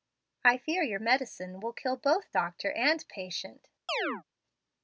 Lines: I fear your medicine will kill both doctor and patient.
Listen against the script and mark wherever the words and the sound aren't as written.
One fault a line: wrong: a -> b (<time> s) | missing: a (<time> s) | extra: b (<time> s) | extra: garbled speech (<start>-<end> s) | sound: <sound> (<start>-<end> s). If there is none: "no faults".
sound: chirp (3.9-4.2 s)